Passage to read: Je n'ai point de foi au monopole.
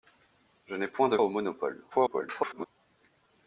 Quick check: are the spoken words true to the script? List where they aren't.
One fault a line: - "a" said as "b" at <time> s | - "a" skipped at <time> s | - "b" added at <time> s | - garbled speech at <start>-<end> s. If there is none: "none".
- "foi" skipped at 1.2 s
- garbled speech at 1.9-2.7 s